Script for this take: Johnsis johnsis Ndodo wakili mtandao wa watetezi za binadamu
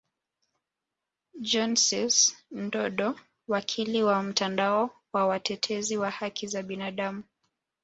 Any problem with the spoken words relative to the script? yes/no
yes